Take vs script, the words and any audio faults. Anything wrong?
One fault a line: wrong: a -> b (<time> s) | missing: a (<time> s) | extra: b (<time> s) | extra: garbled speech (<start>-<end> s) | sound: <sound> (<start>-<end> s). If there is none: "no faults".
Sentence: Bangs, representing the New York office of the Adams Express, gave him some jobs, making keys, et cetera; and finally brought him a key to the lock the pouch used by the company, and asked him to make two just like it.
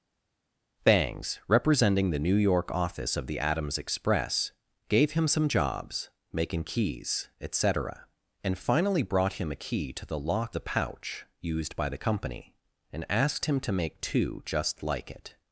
no faults